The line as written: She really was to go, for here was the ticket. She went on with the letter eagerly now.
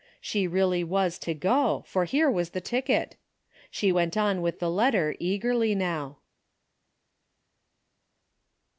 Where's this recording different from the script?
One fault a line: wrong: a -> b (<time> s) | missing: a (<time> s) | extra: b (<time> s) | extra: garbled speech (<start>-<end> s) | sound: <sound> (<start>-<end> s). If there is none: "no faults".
no faults